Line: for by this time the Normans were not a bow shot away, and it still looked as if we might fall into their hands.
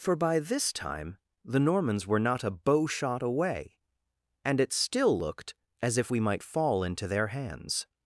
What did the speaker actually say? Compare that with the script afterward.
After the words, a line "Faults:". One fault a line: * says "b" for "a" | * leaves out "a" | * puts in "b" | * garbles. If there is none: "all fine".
for by this time the Normans were not a bow shot away, and it still looked as if we might fall into their hands.
Faults:
all fine